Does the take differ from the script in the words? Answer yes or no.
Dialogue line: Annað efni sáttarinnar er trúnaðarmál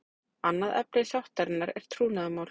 no